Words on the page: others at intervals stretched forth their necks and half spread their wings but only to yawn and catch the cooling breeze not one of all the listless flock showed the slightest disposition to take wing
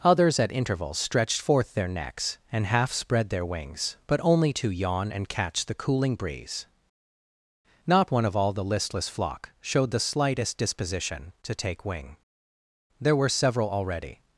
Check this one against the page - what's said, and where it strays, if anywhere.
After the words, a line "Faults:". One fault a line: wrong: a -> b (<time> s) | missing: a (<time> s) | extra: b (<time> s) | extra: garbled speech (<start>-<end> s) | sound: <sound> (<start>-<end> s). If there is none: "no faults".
others at intervals stretched forth their necks and half spread their wings but only to yawn and catch the cooling breeze not one of all the listless flock showed the slightest disposition to take wing there were several already
Faults:
extra: there were several already (13.0 s)